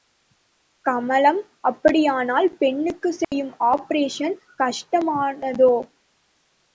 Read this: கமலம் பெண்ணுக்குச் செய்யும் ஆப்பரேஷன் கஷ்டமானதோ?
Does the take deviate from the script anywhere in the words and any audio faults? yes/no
yes